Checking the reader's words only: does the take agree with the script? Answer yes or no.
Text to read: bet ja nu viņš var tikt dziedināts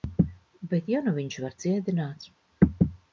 no